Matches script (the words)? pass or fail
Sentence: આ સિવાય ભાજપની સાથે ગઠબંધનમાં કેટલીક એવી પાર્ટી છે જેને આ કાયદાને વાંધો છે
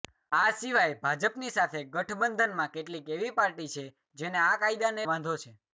pass